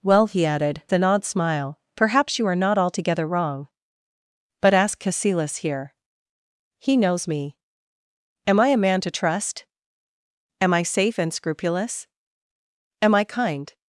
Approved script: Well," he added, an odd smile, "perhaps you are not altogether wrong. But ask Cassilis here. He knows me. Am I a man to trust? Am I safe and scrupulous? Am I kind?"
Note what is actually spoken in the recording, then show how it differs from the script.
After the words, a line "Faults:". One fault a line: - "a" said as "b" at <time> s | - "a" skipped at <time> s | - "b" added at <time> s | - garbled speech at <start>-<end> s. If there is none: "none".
Well," he added, an odd smile, "perhaps you are not altogether wrong. But ask Cassilis here. He knows me. Am I a man to trust? Am I safe and scrupulous? Am I kind?"
Faults:
none